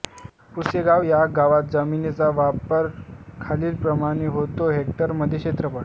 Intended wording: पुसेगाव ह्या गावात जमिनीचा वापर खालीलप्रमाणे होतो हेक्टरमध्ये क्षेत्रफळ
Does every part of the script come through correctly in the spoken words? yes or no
yes